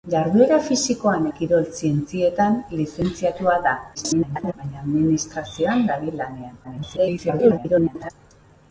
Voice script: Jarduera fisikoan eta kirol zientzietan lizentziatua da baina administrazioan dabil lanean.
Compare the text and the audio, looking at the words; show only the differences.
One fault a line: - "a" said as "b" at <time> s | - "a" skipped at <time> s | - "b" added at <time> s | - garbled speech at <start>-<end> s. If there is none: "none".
- "eta" skipped at 1.3 s
- garbled speech at 3.9-4.5 s
- garbled speech at 6.6-8.1 s